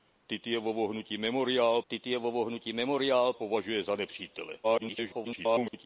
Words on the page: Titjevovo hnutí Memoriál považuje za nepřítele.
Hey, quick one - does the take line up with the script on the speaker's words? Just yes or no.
no